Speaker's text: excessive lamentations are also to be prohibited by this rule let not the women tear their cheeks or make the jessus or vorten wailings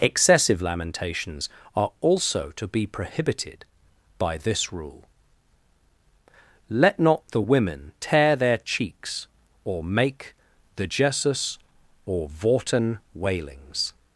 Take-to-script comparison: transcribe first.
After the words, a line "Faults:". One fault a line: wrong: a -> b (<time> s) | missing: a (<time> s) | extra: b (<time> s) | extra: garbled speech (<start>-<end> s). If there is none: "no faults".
excessive lamentations are also to be prohibited by this rule let not the women tear their cheeks or make the jessus or vorten wailings
Faults:
no faults